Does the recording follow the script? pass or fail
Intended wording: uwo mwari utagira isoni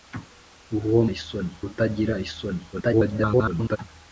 fail